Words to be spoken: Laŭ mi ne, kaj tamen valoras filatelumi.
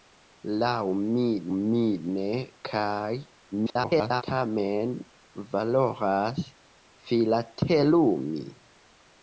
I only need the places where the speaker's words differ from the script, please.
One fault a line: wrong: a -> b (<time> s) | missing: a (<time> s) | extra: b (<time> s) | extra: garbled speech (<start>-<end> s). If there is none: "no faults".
extra: mi (1.6 s)
extra: garbled speech (3.5-4.2 s)